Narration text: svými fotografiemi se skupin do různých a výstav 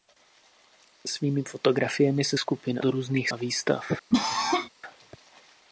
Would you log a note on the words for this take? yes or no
no